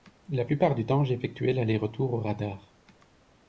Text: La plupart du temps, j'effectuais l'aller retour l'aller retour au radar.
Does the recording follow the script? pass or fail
fail